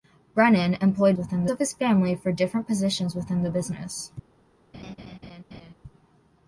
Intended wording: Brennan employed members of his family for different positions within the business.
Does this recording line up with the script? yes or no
no